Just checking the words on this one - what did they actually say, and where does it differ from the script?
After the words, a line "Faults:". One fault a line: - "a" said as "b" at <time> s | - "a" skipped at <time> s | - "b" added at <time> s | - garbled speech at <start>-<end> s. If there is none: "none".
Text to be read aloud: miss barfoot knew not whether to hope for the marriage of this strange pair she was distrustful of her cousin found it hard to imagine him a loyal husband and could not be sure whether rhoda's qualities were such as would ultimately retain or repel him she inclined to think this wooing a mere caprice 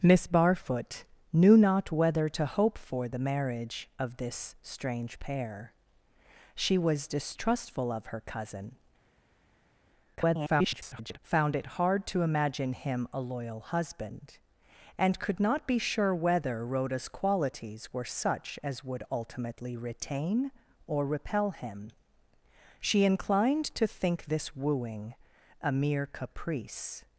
miss barfoot knew not whether to hope for the marriage of this strange pair she was distrustful of her cousin [garbled] found it hard to imagine him a loyal husband and could not be sure whether rhoda's qualities were such as would ultimately retain or repel him she inclined to think this wooing a mere caprice
Faults:
- garbled speech at 10.2-11.2 s